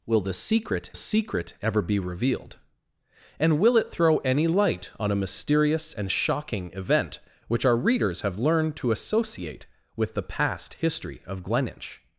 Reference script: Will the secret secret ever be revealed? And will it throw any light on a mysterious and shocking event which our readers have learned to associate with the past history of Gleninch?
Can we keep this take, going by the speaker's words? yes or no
yes